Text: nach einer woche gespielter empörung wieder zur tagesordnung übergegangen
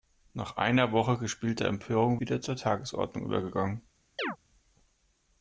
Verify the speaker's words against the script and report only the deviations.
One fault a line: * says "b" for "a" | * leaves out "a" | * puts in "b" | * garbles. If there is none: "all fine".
all fine